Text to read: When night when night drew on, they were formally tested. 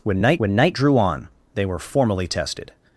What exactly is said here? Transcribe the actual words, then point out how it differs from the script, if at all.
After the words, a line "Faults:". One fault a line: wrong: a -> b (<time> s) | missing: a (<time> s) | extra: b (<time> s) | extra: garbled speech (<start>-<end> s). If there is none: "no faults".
When night when night drew on, they were formally tested.
Faults:
no faults